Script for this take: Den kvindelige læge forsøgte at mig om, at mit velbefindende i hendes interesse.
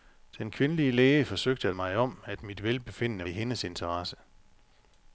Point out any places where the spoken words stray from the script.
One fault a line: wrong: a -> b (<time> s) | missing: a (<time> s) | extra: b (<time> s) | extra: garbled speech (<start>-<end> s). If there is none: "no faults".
no faults